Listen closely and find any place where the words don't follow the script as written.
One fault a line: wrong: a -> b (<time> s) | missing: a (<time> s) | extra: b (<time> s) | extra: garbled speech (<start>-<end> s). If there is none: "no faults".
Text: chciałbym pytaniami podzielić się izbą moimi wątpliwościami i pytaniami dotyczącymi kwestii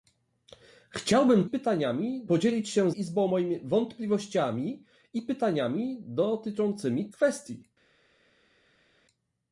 no faults